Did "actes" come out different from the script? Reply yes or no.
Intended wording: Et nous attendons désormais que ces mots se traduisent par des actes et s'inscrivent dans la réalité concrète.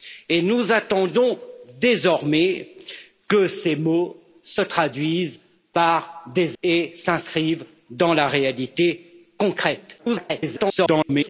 yes